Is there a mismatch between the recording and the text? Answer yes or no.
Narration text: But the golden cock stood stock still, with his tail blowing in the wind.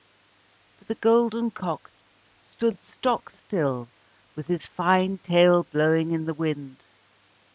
yes